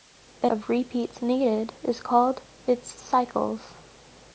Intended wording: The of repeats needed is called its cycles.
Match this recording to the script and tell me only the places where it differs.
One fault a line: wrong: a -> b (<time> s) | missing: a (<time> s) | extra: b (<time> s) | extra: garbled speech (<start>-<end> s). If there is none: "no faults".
no faults